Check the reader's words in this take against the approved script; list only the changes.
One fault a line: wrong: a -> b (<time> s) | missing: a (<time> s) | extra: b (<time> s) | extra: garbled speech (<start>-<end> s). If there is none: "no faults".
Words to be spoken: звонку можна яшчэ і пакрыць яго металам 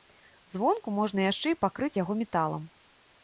no faults